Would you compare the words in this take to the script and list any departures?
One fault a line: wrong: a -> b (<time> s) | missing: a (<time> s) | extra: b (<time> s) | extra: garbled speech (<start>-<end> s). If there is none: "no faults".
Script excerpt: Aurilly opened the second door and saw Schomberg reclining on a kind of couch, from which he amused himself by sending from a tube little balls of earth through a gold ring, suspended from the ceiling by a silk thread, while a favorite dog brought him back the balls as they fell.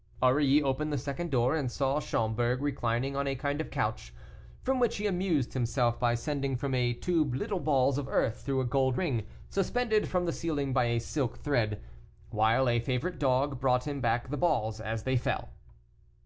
no faults